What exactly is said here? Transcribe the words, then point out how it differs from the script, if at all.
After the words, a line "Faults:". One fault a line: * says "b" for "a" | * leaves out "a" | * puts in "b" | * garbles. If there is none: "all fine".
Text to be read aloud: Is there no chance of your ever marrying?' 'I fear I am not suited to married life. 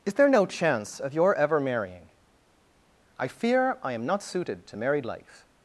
Is there no chance of your ever marrying?' 'I fear I am not suited to married life.
Faults:
all fine